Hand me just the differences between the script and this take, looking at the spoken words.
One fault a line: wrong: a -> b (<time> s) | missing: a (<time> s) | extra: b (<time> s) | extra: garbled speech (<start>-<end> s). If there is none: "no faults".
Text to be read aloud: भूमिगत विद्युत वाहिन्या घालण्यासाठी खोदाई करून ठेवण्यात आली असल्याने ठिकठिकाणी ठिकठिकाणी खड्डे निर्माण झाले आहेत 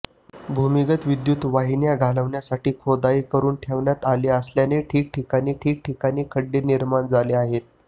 no faults